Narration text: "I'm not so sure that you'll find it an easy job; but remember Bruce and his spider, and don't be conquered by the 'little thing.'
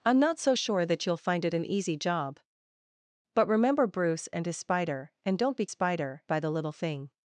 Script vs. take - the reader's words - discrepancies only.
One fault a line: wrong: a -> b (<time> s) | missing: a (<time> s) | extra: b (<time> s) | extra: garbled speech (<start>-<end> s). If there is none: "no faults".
wrong: conquered -> spider (5.7 s)